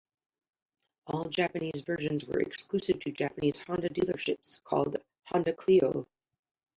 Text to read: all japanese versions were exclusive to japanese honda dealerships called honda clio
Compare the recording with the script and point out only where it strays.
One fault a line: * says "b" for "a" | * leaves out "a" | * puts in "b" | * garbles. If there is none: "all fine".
all fine